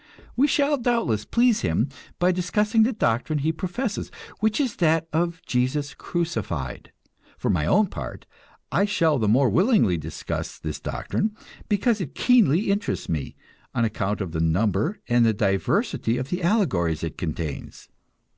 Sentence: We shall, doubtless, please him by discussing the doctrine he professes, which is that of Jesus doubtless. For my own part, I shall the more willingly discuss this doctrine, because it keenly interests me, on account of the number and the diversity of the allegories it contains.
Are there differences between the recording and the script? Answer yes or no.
yes